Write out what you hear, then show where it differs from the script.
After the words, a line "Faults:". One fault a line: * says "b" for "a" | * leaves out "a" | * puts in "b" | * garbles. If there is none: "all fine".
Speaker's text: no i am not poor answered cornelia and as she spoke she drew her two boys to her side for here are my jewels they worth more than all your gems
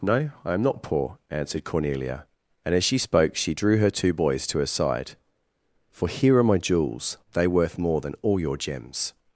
no i am not poor answered cornelia and as she spoke she drew her two boys to her side for here are my jewels they worth more than all your gems
Faults:
all fine